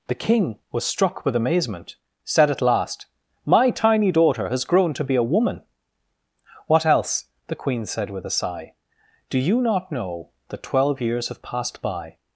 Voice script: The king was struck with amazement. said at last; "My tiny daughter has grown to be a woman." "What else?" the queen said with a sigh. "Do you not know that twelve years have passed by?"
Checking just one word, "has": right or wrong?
right